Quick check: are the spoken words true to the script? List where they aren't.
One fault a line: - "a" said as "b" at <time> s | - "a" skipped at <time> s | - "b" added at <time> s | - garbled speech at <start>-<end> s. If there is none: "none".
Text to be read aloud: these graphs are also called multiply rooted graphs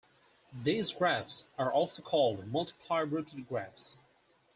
none